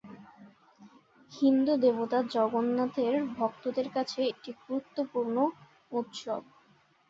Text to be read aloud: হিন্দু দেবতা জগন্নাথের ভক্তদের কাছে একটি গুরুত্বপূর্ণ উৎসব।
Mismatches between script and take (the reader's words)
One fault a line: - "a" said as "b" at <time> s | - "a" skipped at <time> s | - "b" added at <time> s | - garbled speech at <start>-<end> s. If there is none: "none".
none